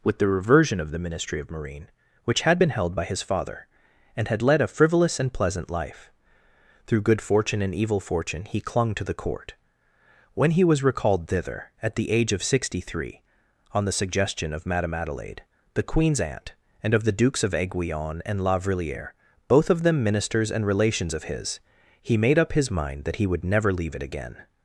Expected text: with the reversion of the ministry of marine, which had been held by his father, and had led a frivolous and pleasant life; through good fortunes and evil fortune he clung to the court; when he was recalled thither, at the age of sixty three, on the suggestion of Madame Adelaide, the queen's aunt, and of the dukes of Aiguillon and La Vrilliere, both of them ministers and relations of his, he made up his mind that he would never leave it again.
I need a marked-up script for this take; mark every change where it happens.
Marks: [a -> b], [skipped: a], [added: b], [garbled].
with the reversion of the ministry of marine, which had been held by his father, and had led a frivolous and pleasant life; through good [fortunes -> fortune] and evil fortune he clung to the court; when he was recalled thither, at the age of sixty three, on the suggestion of Madame Adelaide, the queen's aunt, and of the dukes of Aiguillon and La Vrilliere, both of them ministers and relations of his, he made up his mind that he would never leave it again.